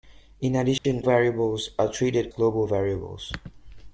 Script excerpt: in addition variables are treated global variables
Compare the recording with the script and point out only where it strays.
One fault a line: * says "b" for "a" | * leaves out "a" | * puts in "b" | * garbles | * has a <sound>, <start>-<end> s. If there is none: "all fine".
* has a dropout, 0.8-0.8 s